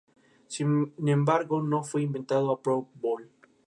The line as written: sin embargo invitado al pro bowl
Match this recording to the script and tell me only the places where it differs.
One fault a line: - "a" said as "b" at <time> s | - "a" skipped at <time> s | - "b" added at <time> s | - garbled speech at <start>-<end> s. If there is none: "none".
- "no fue" added at 1.6 s